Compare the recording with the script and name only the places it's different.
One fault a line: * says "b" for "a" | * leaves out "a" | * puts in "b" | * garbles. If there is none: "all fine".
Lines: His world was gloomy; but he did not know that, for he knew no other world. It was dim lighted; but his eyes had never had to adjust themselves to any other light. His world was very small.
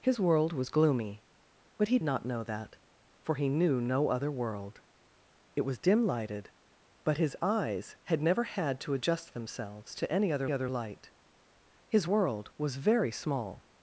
* leaves out "did"
* puts in "other"